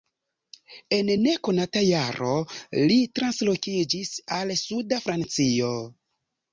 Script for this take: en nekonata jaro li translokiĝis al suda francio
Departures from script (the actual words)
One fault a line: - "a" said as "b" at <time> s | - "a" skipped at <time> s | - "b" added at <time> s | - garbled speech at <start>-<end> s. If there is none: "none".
none